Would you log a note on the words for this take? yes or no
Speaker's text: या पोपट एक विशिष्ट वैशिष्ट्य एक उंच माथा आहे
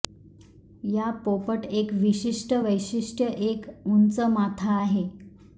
no